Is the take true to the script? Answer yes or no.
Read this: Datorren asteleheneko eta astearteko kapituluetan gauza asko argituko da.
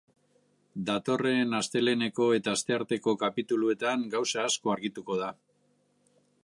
yes